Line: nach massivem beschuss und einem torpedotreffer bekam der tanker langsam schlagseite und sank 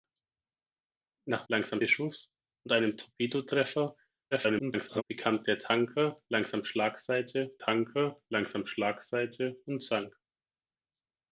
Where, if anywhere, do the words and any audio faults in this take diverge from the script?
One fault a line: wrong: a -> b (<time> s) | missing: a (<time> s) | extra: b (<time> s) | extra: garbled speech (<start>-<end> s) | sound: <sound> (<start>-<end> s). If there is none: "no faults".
wrong: massivem -> langsam (1.5 s)
extra: garbled speech (4.3-5.0 s)
extra: tanker langsam schlagseite (7.6 s)